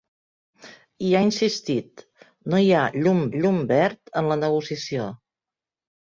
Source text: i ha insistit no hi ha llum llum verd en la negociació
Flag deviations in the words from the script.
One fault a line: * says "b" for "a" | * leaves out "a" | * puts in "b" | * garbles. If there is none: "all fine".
all fine